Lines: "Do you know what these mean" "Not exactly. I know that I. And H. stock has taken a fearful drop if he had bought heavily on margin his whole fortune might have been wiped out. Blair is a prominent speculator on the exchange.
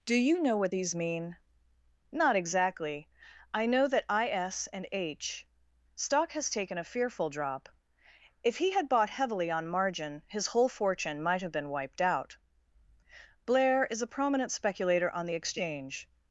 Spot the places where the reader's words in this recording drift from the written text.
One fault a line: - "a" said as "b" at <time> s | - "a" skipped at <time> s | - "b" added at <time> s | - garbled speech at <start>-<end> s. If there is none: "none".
- "S" added at 4.3 s